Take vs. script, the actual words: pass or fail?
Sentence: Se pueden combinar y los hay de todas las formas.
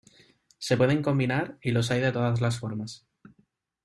pass